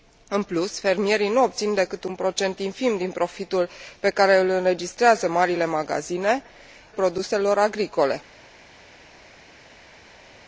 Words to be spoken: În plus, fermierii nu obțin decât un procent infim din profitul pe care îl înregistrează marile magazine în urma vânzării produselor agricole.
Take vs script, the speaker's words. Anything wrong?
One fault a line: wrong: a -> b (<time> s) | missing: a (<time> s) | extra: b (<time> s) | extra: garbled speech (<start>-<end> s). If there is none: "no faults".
missing: în urma vânzării (6.4 s)